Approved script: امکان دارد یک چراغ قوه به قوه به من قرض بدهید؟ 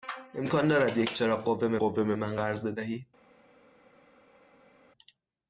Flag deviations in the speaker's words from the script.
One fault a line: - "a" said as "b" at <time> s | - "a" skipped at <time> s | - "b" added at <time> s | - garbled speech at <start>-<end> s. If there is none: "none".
none